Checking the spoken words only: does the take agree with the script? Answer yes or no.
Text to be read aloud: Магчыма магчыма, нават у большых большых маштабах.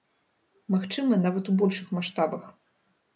no